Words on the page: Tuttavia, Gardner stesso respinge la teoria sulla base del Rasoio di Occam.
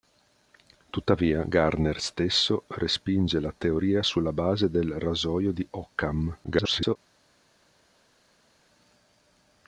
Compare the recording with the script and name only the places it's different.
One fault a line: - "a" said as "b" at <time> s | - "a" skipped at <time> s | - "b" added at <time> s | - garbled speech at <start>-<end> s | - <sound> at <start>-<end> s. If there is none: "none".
- garbled speech at 6.4-7.0 s